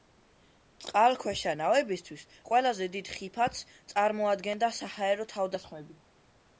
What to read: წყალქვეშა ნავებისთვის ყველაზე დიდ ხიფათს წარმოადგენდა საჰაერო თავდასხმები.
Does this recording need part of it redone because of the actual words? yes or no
no